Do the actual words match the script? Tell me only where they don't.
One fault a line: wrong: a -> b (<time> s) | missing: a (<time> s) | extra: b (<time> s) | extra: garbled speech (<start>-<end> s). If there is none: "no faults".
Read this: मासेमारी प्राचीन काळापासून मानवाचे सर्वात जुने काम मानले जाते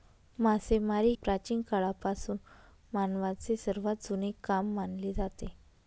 no faults